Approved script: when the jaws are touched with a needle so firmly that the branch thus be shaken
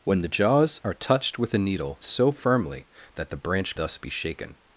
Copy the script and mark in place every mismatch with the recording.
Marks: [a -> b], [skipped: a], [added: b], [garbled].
when the jaws are touched with a needle so firmly that the branch thus be shaken